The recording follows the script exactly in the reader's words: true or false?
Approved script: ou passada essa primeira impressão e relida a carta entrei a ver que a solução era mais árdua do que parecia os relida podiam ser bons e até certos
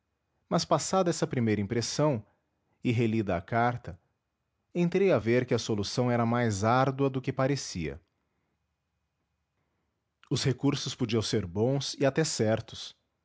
false